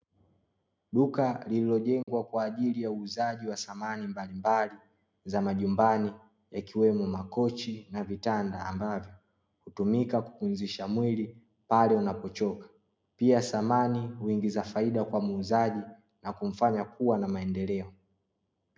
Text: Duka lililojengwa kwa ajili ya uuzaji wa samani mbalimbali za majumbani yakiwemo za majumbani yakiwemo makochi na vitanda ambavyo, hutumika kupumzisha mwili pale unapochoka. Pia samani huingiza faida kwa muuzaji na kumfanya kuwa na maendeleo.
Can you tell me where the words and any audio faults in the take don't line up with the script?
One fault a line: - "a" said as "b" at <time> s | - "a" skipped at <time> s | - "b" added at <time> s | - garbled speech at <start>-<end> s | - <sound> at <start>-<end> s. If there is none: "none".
- dropout at 2.0-2.1 s
- "za majumbani yakiwemo" skipped at 7.1 s